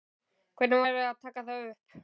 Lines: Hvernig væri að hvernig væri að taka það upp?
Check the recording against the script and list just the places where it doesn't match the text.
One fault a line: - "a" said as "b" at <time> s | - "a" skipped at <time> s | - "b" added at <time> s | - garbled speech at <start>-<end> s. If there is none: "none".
- "hvernig væri að" skipped at 1.2 s